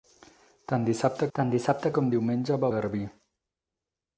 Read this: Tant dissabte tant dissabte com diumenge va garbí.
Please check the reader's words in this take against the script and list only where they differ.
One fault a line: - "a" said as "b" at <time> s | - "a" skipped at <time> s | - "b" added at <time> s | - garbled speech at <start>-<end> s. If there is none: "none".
none